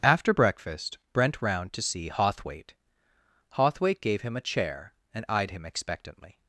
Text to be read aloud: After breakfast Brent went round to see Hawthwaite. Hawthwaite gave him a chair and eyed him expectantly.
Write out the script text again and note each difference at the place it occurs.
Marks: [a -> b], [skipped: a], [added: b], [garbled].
After breakfast Brent [skipped: went] round to see Hawthwaite. Hawthwaite gave him a chair and eyed him expectantly.